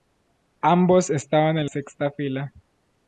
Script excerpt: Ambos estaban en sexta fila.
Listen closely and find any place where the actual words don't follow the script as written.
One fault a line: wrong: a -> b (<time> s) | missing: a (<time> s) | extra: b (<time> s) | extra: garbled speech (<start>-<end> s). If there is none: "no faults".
no faults